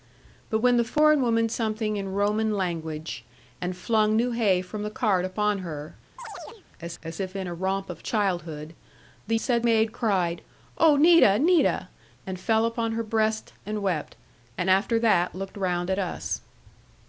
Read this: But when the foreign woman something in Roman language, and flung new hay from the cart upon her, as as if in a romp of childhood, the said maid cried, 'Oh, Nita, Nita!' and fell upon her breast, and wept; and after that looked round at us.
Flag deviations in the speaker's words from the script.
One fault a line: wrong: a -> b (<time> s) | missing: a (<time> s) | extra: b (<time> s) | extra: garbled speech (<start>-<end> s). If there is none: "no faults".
no faults